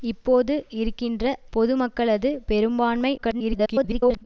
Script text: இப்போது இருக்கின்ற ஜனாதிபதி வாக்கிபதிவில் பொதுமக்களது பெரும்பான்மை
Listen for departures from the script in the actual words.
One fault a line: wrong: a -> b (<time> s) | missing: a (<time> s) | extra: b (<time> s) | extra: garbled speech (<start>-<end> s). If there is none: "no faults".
missing: ஜனாதிபதி வாக்கிபதிவில் (1.2 s)
extra: garbled speech (3.2-4.3 s)